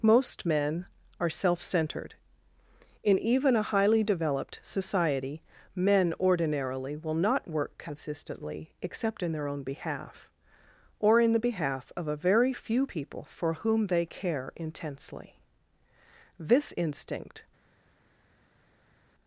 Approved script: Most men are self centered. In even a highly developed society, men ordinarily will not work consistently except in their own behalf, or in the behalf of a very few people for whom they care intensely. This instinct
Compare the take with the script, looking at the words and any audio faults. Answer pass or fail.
pass